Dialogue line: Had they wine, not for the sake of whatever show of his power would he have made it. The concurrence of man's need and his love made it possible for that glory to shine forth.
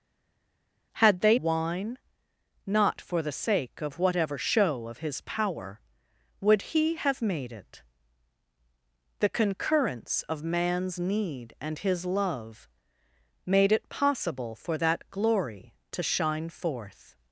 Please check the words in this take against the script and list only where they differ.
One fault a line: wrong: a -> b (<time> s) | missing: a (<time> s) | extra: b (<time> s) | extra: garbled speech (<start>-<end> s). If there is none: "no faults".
no faults